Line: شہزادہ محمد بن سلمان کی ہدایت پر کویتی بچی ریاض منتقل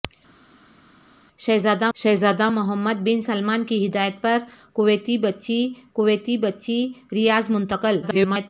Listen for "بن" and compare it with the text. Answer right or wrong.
right